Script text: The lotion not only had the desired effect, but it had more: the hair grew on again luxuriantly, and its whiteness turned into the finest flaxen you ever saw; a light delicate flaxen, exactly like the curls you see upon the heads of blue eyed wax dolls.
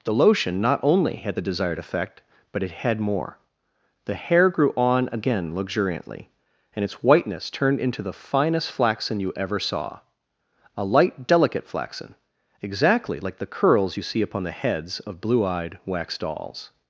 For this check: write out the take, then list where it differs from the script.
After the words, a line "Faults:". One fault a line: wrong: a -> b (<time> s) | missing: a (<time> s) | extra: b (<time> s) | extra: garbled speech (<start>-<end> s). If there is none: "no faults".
The lotion not only had the desired effect, but it had more: the hair grew on again luxuriantly, and its whiteness turned into the finest flaxen you ever saw; a light delicate flaxen, exactly like the curls you see upon the heads of blue eyed wax dolls.
Faults:
no faults